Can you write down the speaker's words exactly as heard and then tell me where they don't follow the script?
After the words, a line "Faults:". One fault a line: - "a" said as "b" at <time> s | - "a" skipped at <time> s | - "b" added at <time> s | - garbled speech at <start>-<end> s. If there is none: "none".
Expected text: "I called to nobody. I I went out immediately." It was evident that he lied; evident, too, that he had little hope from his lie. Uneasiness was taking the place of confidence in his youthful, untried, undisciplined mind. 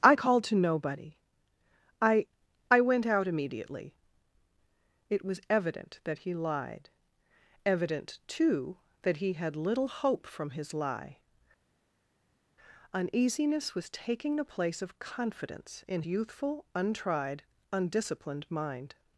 "I called to nobody. I I went out immediately." It was evident that he lied; evident, too, that he had little hope from his lie. Uneasiness was taking the place of confidence in youthful, untried, undisciplined mind.
Faults:
- "his" skipped at 16.0 s